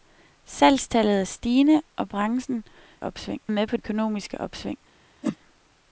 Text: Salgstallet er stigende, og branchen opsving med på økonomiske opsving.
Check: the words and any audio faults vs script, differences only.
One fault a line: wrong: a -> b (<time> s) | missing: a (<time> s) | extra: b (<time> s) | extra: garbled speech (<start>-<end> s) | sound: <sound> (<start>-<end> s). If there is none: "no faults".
sound: whoosh (5.2-5.4 s)